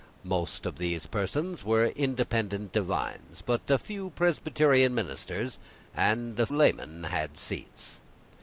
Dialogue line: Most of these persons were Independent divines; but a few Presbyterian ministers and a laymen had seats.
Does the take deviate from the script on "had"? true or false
false